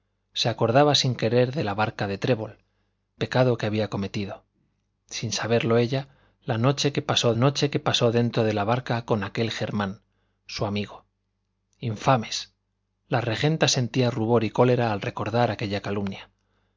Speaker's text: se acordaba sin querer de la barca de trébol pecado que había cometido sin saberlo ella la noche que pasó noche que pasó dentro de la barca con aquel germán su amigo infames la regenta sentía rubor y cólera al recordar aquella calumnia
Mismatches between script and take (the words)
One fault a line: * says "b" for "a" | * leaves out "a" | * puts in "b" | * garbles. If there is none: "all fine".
all fine